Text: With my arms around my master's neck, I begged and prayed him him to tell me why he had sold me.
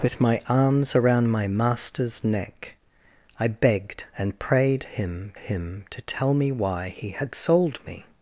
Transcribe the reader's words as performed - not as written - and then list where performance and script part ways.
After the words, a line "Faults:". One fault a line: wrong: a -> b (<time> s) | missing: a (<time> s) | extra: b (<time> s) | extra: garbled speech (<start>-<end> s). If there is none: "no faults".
With my arms around my master's neck, I begged and prayed him him to tell me why he had sold me.
Faults:
no faults